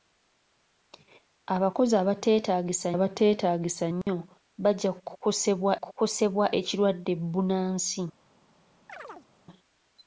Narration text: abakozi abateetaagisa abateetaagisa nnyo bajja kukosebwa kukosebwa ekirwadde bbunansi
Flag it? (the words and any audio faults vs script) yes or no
yes